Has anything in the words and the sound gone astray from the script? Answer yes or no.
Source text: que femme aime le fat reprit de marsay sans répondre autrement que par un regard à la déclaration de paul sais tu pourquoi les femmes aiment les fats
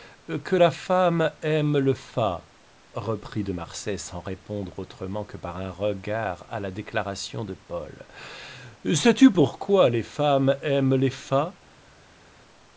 yes